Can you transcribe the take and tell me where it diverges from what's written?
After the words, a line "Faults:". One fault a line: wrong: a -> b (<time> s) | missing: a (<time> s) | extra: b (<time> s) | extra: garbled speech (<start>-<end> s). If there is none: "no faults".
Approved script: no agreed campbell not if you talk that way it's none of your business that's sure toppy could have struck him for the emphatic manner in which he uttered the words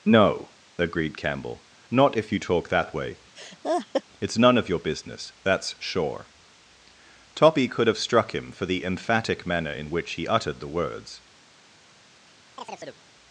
no agreed campbell not if you talk that way it's none of your business that's sure toppy could have struck him for the emphatic manner in which he uttered the words
Faults:
no faults